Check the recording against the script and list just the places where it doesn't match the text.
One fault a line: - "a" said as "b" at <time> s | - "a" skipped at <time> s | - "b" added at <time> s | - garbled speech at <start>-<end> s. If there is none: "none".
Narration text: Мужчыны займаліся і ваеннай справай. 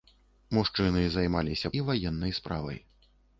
none